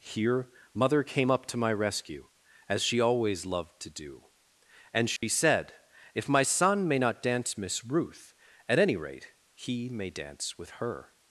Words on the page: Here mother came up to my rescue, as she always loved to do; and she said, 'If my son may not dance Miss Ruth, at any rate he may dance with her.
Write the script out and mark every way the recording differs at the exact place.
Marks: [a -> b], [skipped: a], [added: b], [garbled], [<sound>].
Here mother came up to my rescue, as she always loved to do; and she [dropout] said, 'If my son may not dance Miss Ruth, at any rate he may dance with her.